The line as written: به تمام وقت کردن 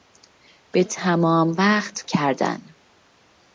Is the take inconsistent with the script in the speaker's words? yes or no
no